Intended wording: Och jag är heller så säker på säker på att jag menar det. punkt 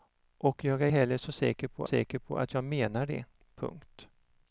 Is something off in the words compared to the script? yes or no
no